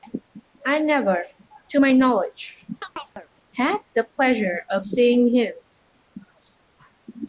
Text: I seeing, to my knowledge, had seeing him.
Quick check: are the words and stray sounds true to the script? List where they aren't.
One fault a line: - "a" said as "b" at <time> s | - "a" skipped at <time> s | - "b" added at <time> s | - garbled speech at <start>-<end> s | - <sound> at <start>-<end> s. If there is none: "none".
- "seeing" said as "never" at 0.8 s
- chirp at 2.8-3.3 s
- "the pleasure of" added at 3.9 s